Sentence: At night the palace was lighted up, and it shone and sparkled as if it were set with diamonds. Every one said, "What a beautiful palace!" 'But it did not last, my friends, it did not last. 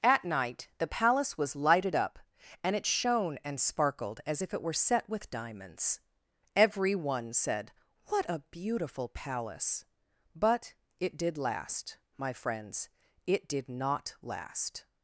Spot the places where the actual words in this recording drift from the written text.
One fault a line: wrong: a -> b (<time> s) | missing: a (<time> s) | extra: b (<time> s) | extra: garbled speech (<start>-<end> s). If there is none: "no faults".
missing: not (11.4 s)